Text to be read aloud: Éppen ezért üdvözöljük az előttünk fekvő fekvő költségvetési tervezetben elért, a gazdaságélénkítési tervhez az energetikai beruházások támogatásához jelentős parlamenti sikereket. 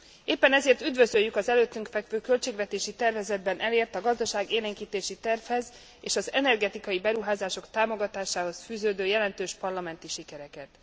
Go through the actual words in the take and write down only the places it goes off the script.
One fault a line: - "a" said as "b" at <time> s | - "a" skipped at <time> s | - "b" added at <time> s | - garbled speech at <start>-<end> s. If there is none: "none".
- "fekvő" skipped at 2.2 s
- "és" added at 6.0 s
- "fűződő" added at 8.6 s